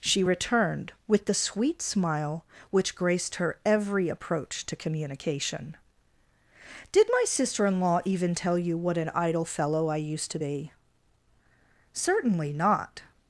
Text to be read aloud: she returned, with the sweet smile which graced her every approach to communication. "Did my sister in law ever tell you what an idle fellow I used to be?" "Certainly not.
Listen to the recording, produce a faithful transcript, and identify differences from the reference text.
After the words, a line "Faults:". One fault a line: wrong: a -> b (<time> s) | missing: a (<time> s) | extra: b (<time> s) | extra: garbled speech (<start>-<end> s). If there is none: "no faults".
she returned, with the sweet smile which graced her every approach to communication. "Did my sister in law even tell you what an idle fellow I used to be?" "Certainly not.
Faults:
wrong: ever -> even (8.0 s)